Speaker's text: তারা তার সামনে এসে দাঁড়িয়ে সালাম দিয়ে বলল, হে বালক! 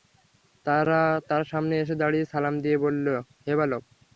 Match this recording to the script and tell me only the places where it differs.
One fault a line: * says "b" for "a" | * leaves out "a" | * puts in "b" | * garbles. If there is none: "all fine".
all fine